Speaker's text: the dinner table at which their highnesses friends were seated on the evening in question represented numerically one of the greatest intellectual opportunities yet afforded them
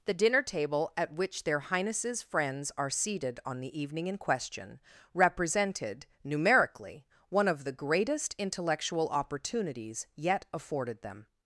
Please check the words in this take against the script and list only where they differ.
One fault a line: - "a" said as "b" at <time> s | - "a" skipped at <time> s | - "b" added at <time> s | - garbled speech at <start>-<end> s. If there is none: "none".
- "were" said as "are" at 2.8 s